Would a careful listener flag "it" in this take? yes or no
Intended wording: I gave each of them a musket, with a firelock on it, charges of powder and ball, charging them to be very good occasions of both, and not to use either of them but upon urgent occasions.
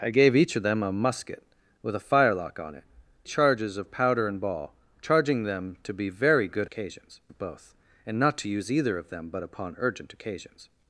no